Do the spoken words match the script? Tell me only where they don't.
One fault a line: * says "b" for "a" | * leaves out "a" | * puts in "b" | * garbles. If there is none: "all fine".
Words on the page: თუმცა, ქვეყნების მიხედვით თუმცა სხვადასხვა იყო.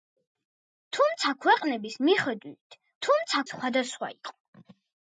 all fine